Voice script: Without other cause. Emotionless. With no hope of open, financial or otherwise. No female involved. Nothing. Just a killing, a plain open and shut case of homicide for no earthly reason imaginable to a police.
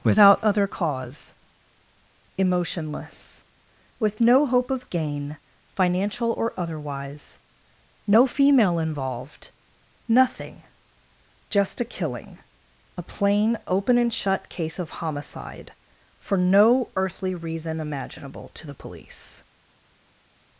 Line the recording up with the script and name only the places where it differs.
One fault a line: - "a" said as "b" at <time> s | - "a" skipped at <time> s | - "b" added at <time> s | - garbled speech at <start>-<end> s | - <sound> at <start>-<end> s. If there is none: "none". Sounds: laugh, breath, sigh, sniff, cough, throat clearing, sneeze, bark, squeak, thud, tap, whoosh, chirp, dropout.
- "open" said as "gain" at 4.9 s
- "a" said as "the" at 18.6 s